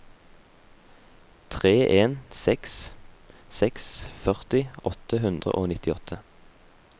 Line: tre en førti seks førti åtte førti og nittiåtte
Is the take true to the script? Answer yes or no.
no